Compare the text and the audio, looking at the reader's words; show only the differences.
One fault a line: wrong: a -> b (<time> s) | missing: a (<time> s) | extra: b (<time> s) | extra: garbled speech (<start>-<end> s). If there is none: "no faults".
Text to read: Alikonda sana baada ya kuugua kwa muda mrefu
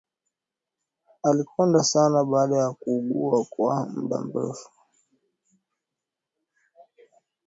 no faults